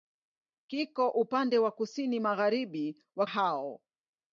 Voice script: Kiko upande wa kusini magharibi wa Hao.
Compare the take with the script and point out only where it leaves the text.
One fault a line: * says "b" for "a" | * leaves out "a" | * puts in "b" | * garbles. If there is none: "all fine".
all fine